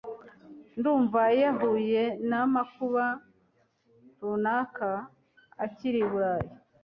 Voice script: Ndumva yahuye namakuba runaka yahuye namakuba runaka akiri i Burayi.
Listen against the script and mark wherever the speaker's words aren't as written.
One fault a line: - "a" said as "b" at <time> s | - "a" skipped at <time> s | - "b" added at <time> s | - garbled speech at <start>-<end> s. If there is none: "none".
- "yahuye namakuba runaka" skipped at 4.9 s